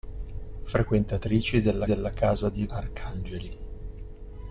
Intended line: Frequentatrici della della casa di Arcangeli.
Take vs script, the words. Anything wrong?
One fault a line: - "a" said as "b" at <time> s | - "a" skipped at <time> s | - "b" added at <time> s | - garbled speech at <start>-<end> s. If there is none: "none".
none